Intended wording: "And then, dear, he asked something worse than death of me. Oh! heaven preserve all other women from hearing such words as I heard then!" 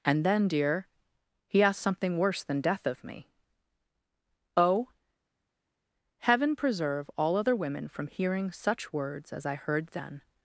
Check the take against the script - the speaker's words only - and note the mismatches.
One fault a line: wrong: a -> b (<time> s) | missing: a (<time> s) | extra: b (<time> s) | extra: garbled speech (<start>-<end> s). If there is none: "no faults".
no faults